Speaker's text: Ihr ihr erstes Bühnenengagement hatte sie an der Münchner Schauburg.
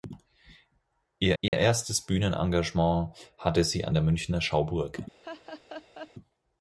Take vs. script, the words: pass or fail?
pass